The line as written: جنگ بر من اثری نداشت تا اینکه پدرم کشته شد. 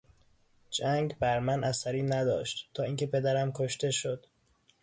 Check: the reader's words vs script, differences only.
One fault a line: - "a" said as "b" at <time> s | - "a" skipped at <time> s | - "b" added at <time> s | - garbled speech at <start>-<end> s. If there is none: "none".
none